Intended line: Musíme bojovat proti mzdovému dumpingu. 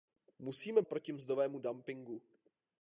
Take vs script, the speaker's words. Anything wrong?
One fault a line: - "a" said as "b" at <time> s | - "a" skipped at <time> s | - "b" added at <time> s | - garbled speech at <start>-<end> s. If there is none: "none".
- "bojovat" skipped at 0.8 s